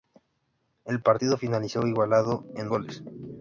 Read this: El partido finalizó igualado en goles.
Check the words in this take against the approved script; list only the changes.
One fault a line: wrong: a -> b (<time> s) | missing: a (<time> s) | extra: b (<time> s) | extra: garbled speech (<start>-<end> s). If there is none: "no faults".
no faults